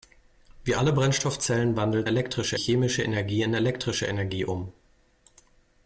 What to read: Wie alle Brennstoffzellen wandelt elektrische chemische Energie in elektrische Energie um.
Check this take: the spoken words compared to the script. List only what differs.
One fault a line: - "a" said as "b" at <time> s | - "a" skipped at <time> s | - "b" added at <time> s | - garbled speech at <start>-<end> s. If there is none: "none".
none